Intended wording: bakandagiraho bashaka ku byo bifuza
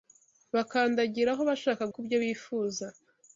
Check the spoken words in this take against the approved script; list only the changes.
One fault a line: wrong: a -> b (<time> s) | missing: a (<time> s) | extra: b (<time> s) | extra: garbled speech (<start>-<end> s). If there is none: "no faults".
no faults